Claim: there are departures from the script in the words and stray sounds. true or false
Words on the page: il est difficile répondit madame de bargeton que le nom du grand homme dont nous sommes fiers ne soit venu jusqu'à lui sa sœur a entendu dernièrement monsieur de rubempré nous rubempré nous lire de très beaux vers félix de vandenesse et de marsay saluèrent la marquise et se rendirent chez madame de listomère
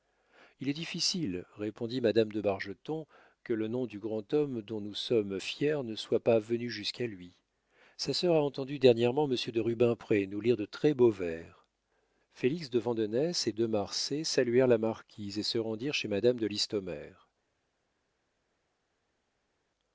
true